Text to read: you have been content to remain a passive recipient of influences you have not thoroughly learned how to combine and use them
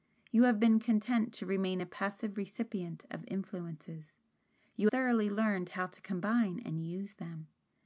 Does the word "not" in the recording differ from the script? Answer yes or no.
yes